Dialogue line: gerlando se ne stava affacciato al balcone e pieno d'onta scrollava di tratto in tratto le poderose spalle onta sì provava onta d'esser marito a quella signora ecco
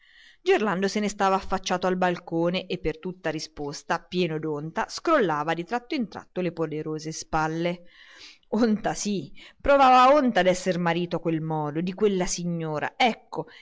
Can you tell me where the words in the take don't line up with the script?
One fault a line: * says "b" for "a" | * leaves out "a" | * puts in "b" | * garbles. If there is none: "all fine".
* puts in "per tutta risposta"
* puts in "quel modo di"